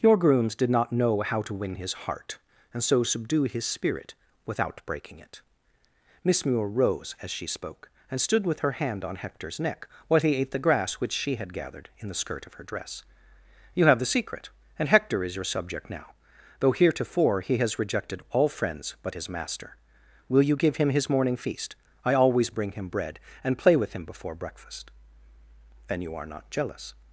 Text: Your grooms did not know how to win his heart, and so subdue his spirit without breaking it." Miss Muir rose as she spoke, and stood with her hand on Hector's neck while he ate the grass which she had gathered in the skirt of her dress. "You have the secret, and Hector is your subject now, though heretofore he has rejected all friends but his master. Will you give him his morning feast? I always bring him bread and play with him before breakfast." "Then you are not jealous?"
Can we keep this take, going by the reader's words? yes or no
yes